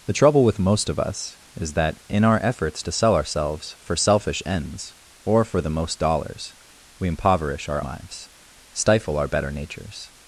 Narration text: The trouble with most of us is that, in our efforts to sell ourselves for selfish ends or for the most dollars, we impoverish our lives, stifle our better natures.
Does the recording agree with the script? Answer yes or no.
yes